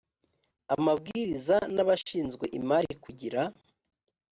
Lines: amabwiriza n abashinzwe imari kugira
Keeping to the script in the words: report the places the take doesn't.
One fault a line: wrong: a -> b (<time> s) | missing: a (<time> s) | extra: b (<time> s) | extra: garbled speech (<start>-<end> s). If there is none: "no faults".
no faults